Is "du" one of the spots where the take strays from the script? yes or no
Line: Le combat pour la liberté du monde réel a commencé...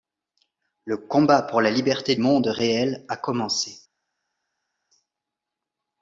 yes